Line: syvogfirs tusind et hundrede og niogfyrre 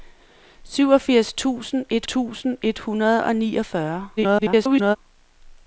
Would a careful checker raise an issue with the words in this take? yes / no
yes